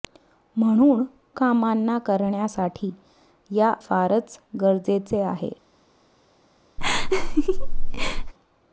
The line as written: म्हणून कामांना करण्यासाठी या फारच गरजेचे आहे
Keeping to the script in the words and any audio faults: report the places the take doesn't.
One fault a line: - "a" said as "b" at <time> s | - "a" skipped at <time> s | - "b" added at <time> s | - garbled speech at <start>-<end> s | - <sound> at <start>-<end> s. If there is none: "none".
- laugh at 6.8-8.3 s